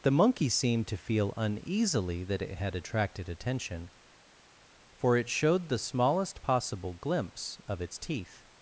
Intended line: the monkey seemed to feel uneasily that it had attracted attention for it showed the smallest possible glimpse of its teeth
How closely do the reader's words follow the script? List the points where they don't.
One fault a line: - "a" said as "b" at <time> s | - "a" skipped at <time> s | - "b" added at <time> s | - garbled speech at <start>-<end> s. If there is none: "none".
none